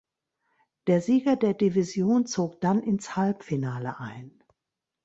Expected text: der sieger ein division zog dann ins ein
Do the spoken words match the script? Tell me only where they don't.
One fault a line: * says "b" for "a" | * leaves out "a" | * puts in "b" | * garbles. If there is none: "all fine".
* says "der" for "ein"
* puts in "halbfinale"